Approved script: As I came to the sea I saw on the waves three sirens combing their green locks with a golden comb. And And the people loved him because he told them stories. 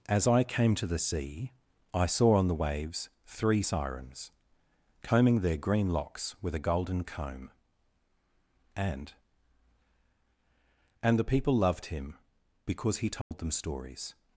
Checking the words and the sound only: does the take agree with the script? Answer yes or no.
no